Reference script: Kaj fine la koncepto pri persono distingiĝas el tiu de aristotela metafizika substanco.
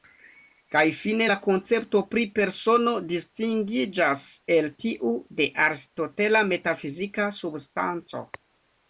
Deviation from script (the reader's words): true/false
false